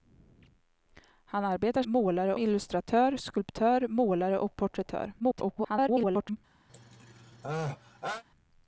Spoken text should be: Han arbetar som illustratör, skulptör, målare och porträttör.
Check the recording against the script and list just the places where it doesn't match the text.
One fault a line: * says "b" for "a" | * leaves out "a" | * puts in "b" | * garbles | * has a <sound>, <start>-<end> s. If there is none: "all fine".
* says "målare" for "som"
* garbles
* has a sneeze, 6.7-8.2 s